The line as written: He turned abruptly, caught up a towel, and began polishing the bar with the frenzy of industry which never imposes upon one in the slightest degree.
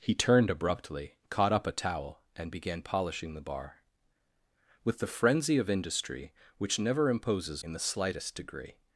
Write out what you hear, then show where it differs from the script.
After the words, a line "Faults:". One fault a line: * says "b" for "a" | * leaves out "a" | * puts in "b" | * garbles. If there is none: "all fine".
He turned abruptly, caught up a towel, and began polishing the bar with the frenzy of industry which never imposes in the slightest degree.
Faults:
* leaves out "upon one"